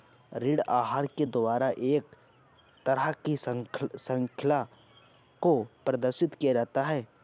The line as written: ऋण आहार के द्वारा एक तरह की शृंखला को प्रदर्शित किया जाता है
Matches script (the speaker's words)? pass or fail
pass